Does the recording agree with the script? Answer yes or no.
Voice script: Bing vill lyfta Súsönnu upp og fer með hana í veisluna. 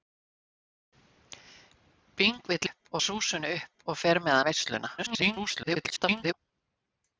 no